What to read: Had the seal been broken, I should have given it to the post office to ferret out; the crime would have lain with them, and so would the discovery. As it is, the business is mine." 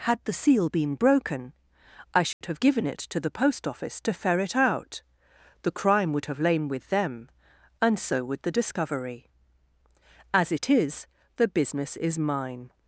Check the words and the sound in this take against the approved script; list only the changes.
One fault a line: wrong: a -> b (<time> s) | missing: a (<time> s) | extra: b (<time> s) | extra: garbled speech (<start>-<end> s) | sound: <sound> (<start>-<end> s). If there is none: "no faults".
sound: dropout (2.3-2.4 s)